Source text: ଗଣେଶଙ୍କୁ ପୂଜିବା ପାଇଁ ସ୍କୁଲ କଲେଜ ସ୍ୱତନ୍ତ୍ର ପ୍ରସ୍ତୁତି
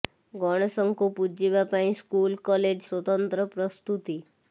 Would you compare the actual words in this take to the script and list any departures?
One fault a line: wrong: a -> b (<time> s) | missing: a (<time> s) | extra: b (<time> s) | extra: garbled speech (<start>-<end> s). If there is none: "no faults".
no faults